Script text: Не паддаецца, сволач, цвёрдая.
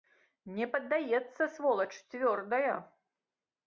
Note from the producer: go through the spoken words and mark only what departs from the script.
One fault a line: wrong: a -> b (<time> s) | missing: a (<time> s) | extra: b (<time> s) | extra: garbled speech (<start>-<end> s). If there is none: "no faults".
no faults